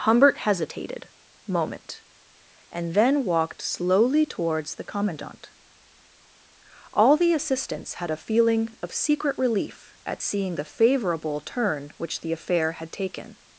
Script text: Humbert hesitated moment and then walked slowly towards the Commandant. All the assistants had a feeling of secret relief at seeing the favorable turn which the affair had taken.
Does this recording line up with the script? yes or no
yes